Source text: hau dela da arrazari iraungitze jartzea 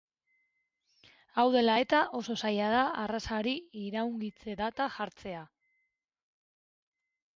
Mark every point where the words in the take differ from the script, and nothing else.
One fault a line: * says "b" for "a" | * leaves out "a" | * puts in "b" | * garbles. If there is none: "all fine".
* puts in "eta oso zaila"
* puts in "data"